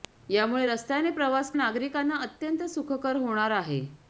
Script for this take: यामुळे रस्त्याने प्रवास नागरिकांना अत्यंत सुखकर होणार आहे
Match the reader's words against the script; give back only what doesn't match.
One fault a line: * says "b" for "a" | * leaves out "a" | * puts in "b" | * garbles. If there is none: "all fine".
all fine